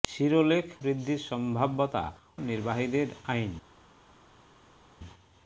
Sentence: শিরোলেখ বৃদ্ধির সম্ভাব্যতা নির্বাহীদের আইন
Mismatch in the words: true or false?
false